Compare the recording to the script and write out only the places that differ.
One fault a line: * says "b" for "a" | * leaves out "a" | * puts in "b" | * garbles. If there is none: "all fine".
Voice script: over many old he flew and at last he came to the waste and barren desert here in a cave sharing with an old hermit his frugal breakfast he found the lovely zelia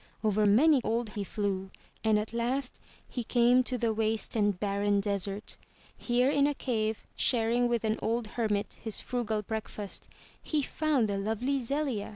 all fine